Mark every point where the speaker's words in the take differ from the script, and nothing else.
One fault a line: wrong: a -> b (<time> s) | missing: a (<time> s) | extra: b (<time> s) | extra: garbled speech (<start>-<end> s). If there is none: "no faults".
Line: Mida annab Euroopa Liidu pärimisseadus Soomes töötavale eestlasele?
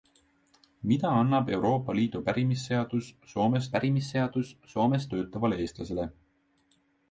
extra: pärimisseadus Soomes (3.8 s)